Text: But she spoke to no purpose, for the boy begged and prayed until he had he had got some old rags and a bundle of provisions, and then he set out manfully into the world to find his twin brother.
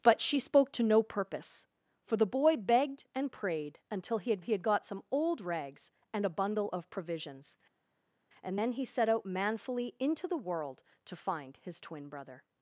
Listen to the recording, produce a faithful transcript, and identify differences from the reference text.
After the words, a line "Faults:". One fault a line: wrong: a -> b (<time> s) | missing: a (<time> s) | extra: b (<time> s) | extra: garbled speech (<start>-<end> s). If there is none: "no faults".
But she spoke to no purpose, for the boy begged and prayed until he had he had got some old rags and a bundle of provisions, and then he set out manfully into the world to find his twin brother.
Faults:
no faults